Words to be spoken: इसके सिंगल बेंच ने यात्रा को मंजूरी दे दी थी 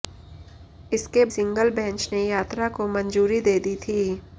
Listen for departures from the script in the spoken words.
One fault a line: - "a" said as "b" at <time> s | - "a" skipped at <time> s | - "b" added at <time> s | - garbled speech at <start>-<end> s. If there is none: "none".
none